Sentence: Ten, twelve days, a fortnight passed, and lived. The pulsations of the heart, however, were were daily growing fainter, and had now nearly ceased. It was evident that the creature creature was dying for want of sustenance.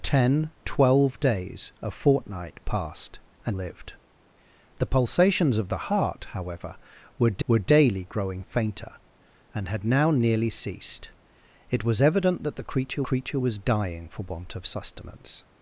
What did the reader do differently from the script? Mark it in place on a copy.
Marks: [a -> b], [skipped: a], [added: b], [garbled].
Ten, twelve days, a fortnight passed, and lived. The pulsations of the heart, however, were were daily growing fainter, and had now nearly ceased. It was evident that the creature creature was dying for want of sustenance.